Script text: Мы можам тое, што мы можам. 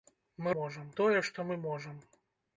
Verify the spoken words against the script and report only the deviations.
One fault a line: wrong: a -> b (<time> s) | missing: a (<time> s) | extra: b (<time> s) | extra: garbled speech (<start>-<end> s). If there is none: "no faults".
no faults